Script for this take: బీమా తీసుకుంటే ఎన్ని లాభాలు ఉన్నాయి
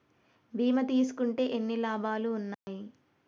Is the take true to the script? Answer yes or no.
yes